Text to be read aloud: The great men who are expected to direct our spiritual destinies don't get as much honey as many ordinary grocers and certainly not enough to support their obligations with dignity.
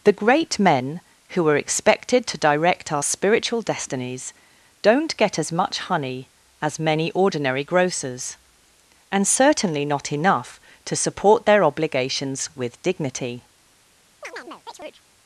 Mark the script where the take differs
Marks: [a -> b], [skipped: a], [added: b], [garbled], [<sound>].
The great men who are expected to direct our spiritual destinies don't get as much honey as many ordinary grocers and certainly not enough to support their obligations with dignity. [chirp]